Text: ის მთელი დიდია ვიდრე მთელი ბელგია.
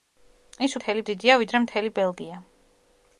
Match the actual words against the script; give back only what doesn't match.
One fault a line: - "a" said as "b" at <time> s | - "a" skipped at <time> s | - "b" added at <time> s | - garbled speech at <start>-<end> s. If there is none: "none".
none